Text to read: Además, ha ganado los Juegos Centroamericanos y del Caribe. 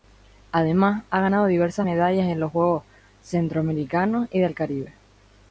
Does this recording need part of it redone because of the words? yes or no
yes